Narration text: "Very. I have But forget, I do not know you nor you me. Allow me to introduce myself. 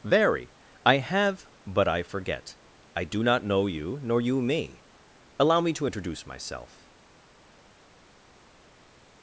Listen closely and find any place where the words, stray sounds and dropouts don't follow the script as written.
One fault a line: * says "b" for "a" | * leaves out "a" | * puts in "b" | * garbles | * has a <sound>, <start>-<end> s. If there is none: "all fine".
* puts in "I"